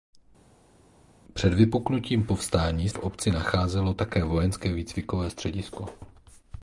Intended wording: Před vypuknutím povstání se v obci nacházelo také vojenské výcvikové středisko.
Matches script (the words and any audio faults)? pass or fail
fail